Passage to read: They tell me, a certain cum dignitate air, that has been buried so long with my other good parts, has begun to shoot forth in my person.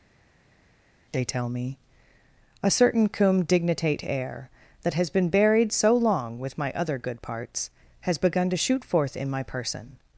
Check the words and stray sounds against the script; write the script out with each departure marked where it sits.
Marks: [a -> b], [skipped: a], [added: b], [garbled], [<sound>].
They tell me, a certain cum dignitate air, that has been buried so long with my other good parts, has begun to shoot forth in my person.